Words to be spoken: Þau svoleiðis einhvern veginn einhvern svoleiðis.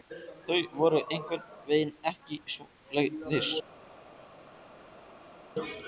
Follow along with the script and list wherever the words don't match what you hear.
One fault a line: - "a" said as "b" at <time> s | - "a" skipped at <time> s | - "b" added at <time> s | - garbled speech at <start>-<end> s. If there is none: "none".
- "svoleiðis" said as "voru" at 0.8 s
- "einhvern" said as "ekki" at 2.1 s